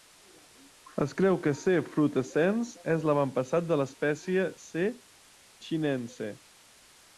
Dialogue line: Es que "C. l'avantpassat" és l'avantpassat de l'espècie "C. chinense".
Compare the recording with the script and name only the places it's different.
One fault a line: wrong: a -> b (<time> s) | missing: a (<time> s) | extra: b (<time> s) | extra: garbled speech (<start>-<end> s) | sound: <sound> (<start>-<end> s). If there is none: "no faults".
extra: creu (1.2 s)
wrong: l'avantpassat -> frutescens (2.0 s)